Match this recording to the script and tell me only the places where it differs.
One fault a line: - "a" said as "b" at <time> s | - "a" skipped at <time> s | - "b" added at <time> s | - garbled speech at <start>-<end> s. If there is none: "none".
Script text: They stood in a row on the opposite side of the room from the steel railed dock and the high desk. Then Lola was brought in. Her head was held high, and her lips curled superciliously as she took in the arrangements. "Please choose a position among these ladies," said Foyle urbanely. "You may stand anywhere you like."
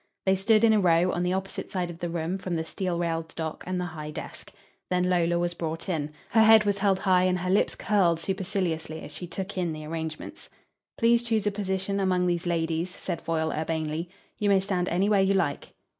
none